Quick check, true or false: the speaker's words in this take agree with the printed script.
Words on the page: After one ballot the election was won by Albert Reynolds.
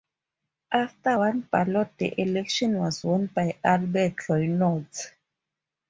true